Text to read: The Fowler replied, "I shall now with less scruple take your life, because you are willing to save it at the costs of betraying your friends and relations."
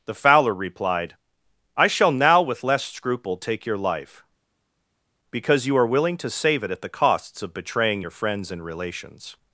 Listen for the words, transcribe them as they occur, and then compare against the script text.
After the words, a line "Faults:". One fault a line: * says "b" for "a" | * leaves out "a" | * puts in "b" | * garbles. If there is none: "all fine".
The Fowler replied, "I shall now with less scruple take your life, because you are willing to save it at the costs of betraying your friends and relations."
Faults:
all fine